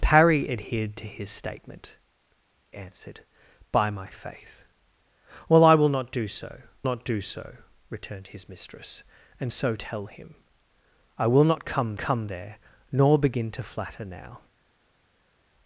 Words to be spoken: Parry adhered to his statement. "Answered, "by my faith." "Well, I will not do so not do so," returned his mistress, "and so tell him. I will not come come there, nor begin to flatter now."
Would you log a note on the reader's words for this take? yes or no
no